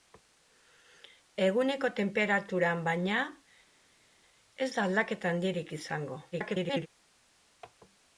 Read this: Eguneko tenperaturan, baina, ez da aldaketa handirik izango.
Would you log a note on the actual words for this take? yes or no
yes